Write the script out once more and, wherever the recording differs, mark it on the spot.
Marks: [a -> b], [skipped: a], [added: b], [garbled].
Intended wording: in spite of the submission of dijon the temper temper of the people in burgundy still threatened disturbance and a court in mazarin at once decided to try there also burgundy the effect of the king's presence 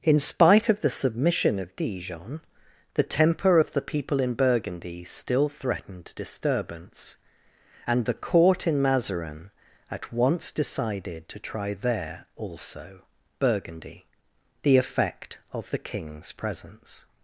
in spite of the submission of dijon the temper [skipped: temper] of the people in burgundy still threatened disturbance and [a -> the] court in mazarin at once decided to try there also burgundy the effect of the king's presence